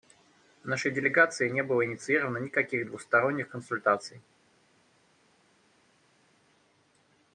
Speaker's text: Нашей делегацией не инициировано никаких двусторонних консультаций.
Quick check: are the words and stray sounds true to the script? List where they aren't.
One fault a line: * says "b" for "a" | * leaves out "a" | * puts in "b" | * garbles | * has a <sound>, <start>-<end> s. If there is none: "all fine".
* puts in "было"